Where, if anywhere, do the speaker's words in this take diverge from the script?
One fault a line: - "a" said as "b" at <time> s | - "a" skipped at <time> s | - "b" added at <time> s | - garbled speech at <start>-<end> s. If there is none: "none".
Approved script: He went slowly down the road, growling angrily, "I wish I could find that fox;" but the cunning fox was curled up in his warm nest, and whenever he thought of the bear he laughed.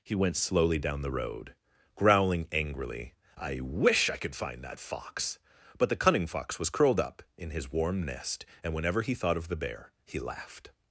none